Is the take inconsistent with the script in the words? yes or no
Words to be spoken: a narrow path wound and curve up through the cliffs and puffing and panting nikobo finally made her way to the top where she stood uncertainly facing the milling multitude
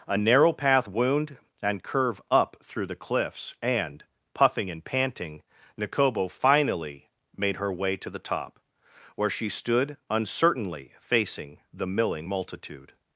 no